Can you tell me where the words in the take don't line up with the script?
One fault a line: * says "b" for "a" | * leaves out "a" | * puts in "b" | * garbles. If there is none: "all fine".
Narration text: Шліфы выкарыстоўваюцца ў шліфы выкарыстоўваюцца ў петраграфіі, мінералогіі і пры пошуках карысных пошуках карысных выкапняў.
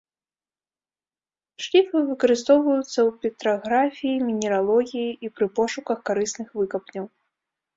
* leaves out "шліфы выкарыстоўваюцца ў"
* leaves out "пошуках карысных"